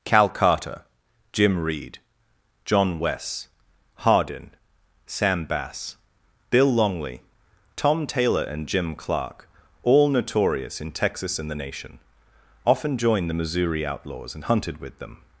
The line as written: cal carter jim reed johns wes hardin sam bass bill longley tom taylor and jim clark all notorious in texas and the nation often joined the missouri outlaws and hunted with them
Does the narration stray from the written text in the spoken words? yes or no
yes